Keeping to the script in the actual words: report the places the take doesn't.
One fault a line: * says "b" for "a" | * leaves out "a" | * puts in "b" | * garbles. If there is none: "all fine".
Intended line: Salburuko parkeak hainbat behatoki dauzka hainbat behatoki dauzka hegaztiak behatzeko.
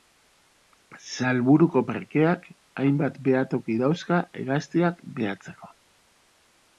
* leaves out "hainbat behatoki dauzka"